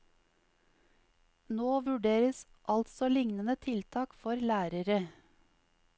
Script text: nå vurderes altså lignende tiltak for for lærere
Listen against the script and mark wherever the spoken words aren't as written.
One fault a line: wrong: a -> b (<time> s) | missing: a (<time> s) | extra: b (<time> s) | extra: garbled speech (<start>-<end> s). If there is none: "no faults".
missing: for (4.3 s)